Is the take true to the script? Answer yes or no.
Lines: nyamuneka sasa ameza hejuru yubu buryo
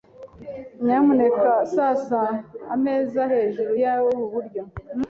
yes